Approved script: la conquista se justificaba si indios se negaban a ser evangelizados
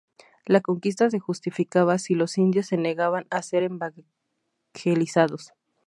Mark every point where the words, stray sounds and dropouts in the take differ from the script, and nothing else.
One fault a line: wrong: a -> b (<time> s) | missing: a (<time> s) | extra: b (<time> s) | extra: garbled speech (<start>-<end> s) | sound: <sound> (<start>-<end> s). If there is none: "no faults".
extra: los (2.2 s)